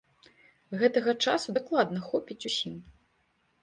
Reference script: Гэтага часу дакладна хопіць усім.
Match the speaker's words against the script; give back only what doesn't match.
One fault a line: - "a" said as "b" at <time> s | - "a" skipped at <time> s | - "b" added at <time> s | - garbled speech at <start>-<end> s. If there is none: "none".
none